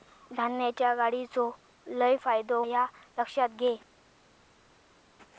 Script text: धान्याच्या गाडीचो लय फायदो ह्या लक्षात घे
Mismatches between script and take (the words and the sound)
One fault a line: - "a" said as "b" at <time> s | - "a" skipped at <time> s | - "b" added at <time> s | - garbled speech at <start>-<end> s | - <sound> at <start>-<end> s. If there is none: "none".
none